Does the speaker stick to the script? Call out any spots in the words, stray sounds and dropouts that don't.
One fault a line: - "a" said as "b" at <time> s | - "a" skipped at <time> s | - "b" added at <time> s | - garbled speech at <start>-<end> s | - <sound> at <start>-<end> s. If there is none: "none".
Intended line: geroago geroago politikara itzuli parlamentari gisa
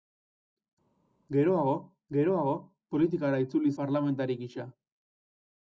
none